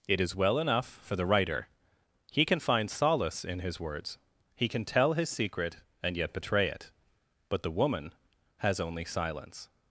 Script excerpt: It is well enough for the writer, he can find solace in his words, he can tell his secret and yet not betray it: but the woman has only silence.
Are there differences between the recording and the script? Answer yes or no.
yes